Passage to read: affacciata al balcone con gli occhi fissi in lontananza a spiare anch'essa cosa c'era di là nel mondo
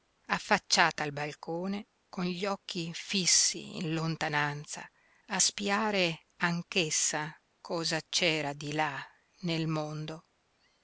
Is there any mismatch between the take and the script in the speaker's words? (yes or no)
no